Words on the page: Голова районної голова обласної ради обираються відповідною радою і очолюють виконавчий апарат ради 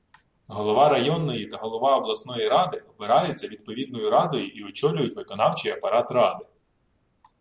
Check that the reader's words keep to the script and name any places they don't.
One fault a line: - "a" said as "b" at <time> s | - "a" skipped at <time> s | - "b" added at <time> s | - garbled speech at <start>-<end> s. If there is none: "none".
- "та" added at 1.4 s